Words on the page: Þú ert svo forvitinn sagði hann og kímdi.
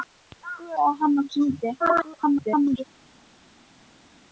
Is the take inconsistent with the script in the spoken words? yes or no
yes